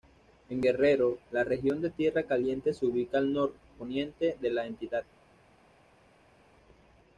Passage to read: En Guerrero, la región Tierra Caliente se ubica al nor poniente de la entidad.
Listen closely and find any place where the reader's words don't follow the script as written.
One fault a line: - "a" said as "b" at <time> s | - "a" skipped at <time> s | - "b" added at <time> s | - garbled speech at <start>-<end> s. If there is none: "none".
- "de" added at 1.8 s